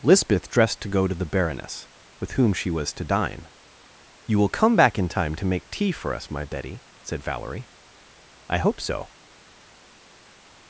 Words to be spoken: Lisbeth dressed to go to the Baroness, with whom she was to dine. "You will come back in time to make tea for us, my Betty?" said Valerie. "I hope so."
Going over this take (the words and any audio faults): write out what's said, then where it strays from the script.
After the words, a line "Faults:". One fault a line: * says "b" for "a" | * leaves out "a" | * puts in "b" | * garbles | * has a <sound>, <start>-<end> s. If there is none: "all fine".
Lisbeth dressed to go to the Baroness, with whom she was to dine. "You will come back in time to make tea for us, my Betty?" said Valerie. "I hope so."
Faults:
all fine